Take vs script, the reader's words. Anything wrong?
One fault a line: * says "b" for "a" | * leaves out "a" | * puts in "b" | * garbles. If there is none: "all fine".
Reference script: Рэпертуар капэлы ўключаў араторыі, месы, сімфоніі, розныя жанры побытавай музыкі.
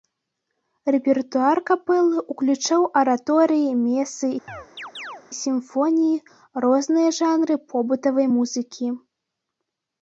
all fine